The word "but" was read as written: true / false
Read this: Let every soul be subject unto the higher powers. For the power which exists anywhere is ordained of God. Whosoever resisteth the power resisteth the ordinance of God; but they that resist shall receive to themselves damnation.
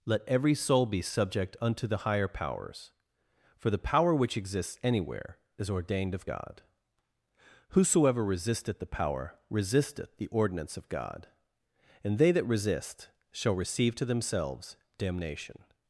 false